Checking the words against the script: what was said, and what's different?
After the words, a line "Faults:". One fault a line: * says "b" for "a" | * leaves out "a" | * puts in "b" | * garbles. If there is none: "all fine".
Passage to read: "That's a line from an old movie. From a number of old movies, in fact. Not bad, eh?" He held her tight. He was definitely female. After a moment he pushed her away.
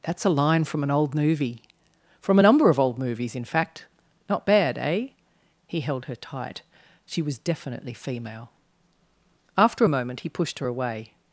"That's a line from an old movie. From a number of old movies, in fact. Not bad, eh?" He held her tight. She was definitely female. After a moment he pushed her away.
Faults:
* says "She" for "He"